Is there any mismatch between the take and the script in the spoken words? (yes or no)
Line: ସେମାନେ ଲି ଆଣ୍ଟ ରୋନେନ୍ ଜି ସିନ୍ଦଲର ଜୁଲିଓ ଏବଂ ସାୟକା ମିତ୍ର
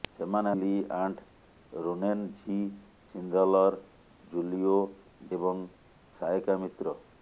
no